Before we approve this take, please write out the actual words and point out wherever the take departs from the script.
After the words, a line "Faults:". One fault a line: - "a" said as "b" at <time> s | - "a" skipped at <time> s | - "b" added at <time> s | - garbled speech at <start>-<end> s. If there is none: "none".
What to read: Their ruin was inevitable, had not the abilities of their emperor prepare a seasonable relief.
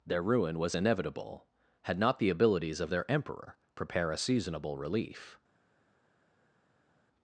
Their ruin was inevitable, had not the abilities of their emperor prepare a seasonable relief.
Faults:
none